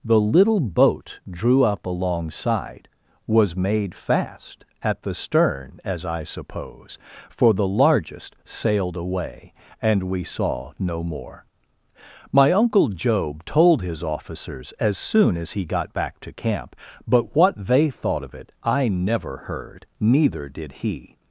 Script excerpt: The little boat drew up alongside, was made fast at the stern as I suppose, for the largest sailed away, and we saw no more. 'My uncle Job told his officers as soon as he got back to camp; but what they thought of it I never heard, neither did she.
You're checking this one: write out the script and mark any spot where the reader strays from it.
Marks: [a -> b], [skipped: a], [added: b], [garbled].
The little boat drew up alongside, was made fast at the stern as I suppose, for the largest sailed away, and we saw no more. 'My uncle Job told his officers as soon as he got back to camp; but what they thought of it I never heard, neither did [she. -> he]